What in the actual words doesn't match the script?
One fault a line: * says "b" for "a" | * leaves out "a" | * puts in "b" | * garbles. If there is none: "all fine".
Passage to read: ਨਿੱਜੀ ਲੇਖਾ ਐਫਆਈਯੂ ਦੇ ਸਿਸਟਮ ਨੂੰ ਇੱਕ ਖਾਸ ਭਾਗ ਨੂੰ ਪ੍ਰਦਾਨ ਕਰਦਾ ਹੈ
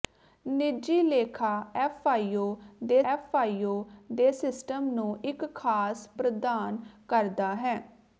* puts in "ਐਫਆਈਯੂ ਦੇ"
* leaves out "ਭਾਗ ਨੂੰ"